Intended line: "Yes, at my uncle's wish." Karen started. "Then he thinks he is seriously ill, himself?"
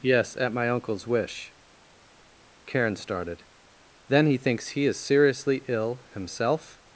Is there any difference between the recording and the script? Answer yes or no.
no